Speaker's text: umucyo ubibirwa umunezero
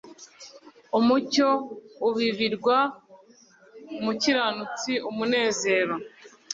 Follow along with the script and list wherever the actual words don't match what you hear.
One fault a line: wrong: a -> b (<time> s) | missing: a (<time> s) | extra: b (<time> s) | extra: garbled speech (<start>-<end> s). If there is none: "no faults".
extra: umukiranutsi (4.0 s)